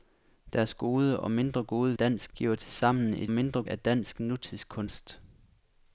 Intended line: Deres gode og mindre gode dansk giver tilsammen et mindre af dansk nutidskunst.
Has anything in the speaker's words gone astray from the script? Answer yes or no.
no